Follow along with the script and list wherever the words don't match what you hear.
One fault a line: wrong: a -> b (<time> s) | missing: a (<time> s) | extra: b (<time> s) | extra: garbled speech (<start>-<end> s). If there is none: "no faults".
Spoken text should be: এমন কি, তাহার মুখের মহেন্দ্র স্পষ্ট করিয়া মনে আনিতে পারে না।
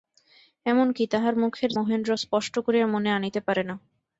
no faults